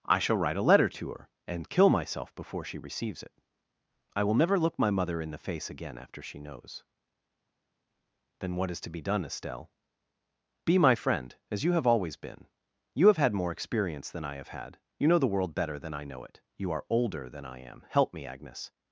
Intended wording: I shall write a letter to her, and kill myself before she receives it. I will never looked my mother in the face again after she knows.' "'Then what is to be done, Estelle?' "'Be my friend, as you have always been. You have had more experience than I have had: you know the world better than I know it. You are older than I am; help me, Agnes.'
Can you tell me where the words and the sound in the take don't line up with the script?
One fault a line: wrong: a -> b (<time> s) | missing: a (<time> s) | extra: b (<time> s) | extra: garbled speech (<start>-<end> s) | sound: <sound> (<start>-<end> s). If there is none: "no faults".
wrong: looked -> look (4.6 s)